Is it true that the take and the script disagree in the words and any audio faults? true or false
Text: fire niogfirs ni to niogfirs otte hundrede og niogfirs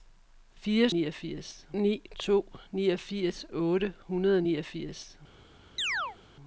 true